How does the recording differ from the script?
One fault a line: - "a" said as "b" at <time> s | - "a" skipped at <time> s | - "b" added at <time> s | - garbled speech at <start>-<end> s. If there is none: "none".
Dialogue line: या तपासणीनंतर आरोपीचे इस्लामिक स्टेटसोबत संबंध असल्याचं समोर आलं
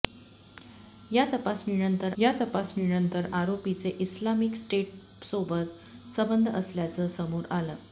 - "या तपासणीनंतर" added at 2.2 s